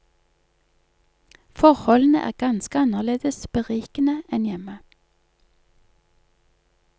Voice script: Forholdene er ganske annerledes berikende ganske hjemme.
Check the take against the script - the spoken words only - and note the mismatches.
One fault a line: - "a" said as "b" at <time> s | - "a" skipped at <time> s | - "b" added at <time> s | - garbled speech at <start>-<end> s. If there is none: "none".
- "ganske" said as "enn" at 4.4 s